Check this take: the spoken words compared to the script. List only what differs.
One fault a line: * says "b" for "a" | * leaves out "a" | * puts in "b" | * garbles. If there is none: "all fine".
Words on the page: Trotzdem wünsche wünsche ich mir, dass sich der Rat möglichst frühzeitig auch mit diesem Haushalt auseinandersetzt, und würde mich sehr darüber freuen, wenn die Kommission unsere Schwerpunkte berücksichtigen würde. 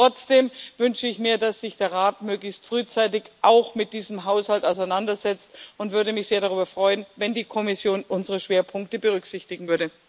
* leaves out "wünsche"